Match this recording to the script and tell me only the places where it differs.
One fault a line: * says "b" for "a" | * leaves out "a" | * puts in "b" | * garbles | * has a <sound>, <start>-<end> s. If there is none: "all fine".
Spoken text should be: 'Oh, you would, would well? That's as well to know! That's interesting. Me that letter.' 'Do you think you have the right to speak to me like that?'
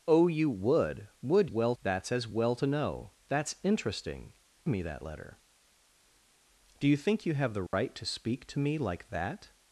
* has a dropout, 7.7-7.7 s